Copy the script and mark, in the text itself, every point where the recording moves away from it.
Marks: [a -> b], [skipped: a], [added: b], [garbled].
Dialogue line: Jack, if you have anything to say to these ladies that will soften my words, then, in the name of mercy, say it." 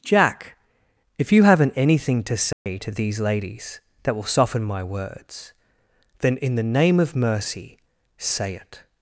Jack, if you [have -> haven't] anything to say to these ladies that will soften my words, then, in the name of mercy, say it."